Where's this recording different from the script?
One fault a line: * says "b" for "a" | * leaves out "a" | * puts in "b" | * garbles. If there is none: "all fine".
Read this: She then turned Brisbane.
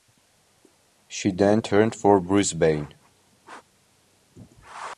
* puts in "for"